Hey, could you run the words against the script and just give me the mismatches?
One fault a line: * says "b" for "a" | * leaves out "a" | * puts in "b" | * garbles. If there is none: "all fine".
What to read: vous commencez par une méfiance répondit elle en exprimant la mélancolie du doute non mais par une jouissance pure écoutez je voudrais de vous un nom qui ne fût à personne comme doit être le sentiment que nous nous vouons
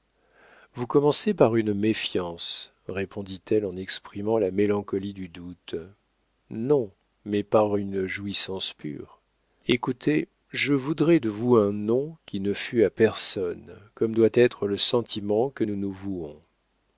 all fine